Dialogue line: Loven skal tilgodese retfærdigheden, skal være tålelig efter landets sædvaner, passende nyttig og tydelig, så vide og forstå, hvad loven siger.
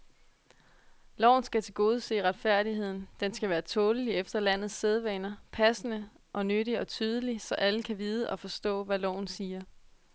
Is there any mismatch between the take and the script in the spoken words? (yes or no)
yes